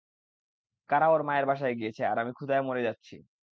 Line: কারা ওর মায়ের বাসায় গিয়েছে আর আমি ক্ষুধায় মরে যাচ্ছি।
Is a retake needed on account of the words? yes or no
no